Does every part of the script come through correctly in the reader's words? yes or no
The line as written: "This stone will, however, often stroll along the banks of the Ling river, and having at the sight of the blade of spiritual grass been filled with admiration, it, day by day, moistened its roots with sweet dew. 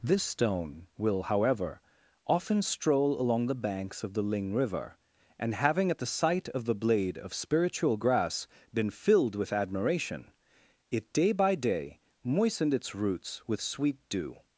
yes